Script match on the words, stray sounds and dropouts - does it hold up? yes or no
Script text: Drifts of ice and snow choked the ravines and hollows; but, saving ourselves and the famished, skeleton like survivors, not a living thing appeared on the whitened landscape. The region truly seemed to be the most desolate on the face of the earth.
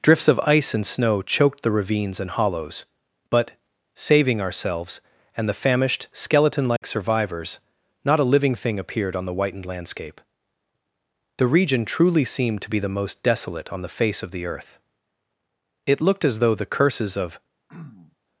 no